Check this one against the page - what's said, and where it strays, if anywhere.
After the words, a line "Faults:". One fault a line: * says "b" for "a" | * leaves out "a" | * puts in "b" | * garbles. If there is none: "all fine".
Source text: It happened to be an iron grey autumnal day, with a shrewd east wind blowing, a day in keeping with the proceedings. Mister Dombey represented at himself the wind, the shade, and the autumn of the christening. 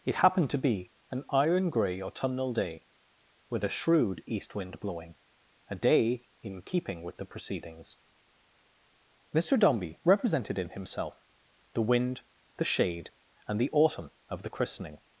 It happened to be an iron grey autumnal day, with a shrewd east wind blowing, a day in keeping with the proceedings. Mister Dombey represented in himself the wind, the shade, and the autumn of the christening.
Faults:
* says "in" for "at"